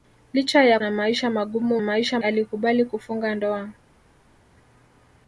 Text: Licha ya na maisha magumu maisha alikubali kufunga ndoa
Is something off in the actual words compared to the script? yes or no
no